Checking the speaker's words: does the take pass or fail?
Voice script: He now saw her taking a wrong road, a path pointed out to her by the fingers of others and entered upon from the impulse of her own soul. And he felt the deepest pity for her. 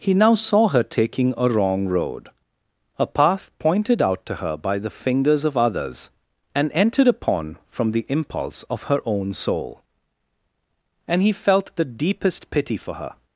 pass